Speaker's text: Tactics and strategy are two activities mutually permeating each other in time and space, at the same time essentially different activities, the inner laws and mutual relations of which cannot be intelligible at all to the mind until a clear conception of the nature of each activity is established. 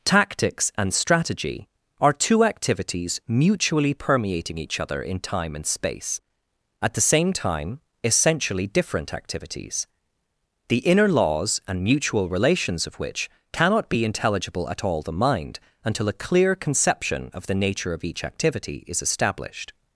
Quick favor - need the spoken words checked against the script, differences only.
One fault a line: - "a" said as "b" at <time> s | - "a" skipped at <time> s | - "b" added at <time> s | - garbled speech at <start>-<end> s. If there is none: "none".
- "to" skipped at 15.0 s